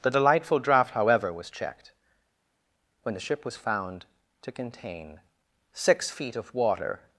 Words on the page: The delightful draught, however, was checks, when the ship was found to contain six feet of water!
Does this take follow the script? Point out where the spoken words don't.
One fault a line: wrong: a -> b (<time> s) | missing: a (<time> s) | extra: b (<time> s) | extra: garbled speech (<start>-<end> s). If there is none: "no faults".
wrong: checks -> checked (1.5 s)